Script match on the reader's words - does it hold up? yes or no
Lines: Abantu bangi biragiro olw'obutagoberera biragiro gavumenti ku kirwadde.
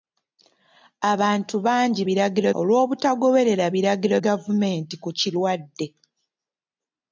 yes